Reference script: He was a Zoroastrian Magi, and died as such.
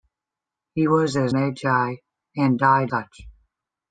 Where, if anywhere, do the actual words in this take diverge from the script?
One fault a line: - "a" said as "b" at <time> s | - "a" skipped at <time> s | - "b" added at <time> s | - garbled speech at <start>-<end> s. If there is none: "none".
- "Zoroastrian" skipped at 1.3 s
- "as" skipped at 2.9 s